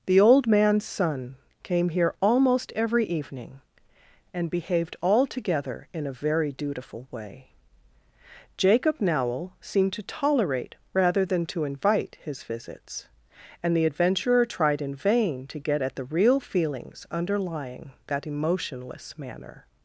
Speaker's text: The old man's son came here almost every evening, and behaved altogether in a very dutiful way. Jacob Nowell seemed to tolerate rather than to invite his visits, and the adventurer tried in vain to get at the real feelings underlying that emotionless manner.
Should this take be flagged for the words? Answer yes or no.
no